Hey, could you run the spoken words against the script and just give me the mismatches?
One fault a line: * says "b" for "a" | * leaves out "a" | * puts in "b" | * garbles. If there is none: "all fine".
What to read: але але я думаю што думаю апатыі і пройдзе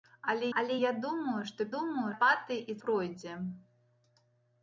all fine